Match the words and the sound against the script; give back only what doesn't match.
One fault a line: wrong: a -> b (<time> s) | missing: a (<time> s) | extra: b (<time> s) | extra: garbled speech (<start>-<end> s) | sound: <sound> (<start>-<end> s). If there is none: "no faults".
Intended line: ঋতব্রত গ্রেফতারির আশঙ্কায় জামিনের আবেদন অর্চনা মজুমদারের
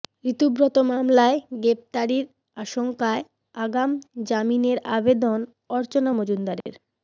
extra: মামলায় (0.9 s)
extra: আগাম (3.5 s)
sound: dropout (6.6-6.7 s)